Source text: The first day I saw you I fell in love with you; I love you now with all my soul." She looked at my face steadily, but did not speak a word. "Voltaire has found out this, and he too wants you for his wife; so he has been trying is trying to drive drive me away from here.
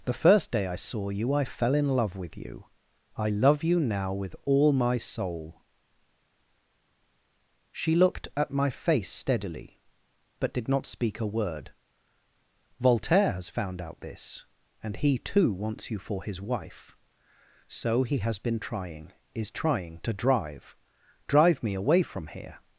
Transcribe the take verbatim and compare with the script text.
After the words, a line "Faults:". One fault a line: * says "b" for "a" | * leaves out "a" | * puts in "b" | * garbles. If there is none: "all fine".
The first day I saw you I fell in love with you; I love you now with all my soul." She looked at my face steadily, but did not speak a word. "Voltaire has found out this, and he too wants you for his wife; so he has been trying is trying to drive drive me away from here.
Faults:
all fine